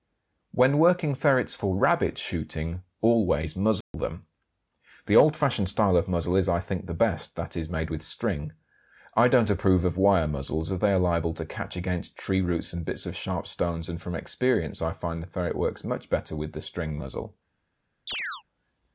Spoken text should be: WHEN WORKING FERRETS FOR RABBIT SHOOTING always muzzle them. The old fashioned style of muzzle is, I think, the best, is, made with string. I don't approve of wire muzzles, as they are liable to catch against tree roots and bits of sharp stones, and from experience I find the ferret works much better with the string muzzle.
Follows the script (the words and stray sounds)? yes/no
no